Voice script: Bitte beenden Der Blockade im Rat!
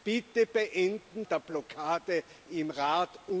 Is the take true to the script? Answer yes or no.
yes